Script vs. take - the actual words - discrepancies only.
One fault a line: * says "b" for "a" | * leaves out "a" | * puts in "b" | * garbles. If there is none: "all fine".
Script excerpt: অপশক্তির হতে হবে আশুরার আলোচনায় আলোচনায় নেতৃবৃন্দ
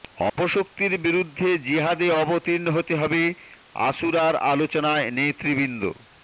* puts in "বিরুদ্ধে জিহাদে অবতীর্ণ"
* leaves out "আলোচনায়"